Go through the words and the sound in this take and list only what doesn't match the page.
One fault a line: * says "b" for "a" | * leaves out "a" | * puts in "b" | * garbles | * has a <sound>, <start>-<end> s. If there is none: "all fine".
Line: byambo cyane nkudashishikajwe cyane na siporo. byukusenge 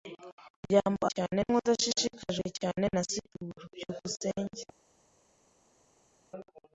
all fine